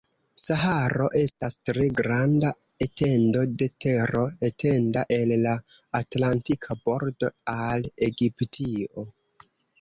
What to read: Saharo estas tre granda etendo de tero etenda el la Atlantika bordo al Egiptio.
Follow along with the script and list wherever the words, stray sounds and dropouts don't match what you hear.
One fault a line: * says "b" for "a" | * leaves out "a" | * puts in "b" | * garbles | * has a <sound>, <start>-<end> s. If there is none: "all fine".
all fine